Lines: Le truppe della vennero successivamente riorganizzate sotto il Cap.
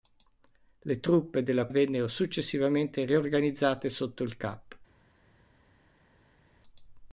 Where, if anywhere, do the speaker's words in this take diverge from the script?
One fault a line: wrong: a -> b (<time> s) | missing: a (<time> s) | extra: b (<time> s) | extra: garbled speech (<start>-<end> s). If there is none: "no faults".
no faults